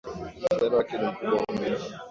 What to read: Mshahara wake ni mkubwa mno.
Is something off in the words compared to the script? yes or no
no